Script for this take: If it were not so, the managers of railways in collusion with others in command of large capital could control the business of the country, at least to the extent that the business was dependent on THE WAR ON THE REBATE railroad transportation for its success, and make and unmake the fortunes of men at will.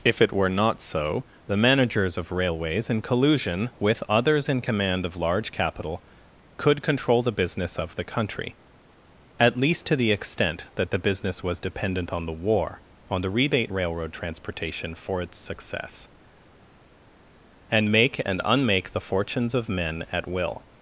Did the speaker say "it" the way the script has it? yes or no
yes